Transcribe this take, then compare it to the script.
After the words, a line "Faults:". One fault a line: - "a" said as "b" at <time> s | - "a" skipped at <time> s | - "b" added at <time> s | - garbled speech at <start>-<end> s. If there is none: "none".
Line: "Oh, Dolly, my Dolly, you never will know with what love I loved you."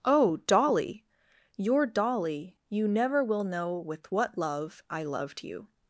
"Oh, Dolly, your Dolly, you never will know with what love I loved you."
Faults:
- "my" said as "your" at 1.6 s